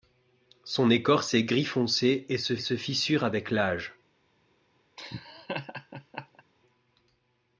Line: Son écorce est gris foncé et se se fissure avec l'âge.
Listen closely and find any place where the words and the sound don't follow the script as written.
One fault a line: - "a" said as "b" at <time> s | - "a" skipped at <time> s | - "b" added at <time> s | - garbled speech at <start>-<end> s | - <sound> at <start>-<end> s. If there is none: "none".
- laugh at 5.0-6.4 s